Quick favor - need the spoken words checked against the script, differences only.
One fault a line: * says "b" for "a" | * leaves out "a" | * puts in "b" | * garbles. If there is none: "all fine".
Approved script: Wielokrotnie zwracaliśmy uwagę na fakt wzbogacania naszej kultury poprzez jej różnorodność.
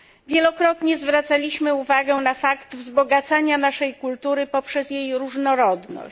all fine